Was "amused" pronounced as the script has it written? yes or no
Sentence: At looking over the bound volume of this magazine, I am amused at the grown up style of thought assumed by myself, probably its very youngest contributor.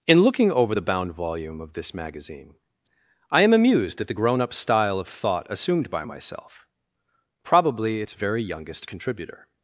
yes